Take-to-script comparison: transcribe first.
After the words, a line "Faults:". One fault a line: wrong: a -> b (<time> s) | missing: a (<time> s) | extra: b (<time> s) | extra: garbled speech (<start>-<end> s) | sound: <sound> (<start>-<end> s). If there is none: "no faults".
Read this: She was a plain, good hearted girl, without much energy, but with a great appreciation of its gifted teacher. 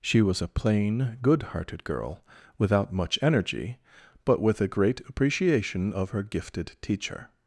She was a plain, good hearted girl, without much energy, but with a great appreciation of her gifted teacher.
Faults:
wrong: its -> her (6.1 s)